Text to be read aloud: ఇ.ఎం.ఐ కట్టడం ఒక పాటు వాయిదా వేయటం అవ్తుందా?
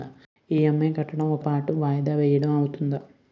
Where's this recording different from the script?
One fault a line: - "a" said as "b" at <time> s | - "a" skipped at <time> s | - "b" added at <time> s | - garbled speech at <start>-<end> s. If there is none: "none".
none